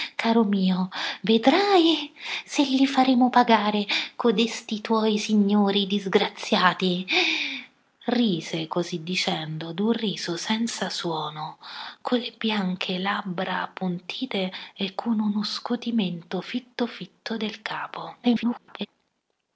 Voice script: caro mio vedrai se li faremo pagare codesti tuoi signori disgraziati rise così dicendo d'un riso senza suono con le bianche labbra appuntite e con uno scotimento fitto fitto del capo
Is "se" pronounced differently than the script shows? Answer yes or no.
no